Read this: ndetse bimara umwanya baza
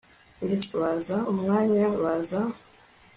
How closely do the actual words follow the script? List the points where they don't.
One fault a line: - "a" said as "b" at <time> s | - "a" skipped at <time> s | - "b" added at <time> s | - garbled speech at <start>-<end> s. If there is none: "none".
- "bimara" said as "baza" at 0.8 s